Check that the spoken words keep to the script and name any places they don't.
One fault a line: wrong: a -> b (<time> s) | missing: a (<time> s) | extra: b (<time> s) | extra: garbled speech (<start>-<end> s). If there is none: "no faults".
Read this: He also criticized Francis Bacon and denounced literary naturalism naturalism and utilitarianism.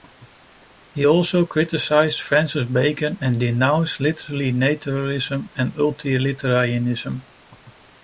missing: naturalism (5.5 s)